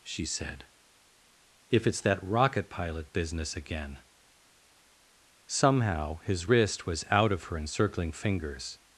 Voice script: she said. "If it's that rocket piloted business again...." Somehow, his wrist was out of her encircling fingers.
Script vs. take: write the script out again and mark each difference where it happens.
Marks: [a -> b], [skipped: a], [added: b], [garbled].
she said. "If it's that rocket [piloted -> pilot] business again...." Somehow, his wrist was out of her encircling fingers.